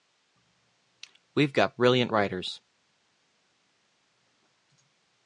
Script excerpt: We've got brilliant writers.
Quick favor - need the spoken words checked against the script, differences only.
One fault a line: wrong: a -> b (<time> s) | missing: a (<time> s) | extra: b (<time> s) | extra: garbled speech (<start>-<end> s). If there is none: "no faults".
no faults